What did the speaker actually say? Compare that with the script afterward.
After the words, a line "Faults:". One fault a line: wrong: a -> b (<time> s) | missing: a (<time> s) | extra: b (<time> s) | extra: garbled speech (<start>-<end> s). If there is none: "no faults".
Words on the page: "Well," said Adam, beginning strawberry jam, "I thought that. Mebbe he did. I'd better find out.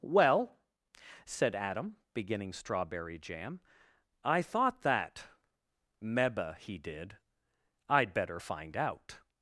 "Well," said Adam, beginning strawberry jam, "I thought that. Mebbe he did. I'd better find out.
Faults:
no faults